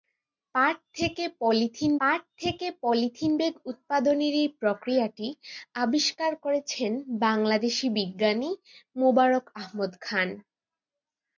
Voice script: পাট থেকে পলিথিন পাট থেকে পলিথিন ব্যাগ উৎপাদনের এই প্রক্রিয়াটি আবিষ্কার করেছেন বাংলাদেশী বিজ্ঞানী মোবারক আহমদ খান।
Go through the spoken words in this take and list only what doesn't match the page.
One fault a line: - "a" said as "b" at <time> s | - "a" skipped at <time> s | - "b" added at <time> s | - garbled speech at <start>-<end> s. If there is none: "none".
none